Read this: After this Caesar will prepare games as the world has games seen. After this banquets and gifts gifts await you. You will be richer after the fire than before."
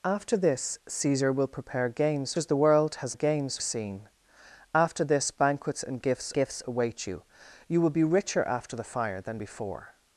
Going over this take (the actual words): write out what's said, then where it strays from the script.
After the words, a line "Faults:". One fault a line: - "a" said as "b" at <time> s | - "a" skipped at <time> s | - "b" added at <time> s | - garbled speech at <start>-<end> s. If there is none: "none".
After this Caesar will prepare games as the world has games seen. After this banquets and gifts gifts await you. You will be richer after the fire than before."
Faults:
none